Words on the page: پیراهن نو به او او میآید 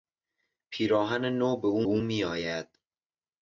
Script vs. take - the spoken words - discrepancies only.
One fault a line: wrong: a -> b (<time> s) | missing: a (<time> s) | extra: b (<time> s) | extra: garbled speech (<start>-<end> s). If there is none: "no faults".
no faults